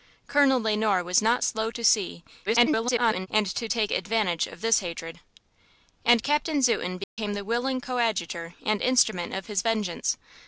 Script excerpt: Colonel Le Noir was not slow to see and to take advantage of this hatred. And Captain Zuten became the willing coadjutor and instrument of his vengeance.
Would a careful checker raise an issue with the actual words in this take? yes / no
yes